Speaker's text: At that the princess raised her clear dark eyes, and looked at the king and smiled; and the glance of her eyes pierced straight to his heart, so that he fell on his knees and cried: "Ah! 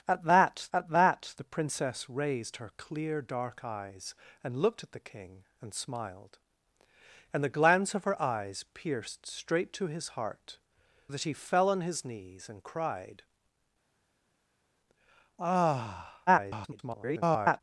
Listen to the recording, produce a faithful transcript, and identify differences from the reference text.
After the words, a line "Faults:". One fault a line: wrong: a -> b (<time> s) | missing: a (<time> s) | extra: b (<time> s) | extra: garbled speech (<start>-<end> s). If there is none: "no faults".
At that at that the princess raised her clear dark eyes, and looked at the king and smiled; and the glance of her eyes pierced straight to his heart, that he fell on his knees and cried: "Ah! [garbled]
Faults:
extra: at that (0.7 s)
missing: so (10.6 s)
extra: garbled speech (16.3-17.6 s)